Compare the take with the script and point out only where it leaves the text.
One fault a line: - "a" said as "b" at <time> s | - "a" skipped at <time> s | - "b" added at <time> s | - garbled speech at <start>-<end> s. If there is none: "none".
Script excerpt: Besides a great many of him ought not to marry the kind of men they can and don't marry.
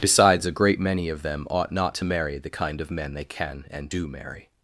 - "him" said as "them" at 1.2 s
- "don't" said as "do" at 3.9 s